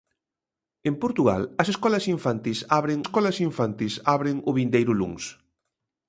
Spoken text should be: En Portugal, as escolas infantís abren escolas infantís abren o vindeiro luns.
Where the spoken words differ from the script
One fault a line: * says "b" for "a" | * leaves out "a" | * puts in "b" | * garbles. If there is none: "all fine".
all fine